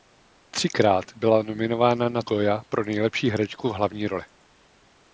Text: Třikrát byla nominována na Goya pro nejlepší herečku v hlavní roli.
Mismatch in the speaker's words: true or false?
false